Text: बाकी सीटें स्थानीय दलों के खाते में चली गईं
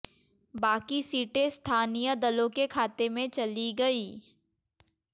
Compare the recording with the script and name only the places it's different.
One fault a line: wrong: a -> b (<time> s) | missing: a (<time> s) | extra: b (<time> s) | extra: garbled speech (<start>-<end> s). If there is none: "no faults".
no faults